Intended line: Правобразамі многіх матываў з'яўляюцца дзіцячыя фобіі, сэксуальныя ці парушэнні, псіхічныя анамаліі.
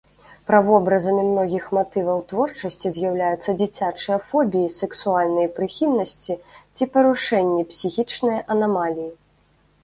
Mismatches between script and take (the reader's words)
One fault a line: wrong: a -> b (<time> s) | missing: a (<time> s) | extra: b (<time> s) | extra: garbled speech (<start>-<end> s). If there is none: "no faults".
extra: творчасці (2.3 s)
extra: прыхільнасці (5.6 s)